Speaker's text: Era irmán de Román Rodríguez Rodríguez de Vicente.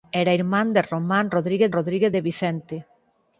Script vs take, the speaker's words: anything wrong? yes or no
no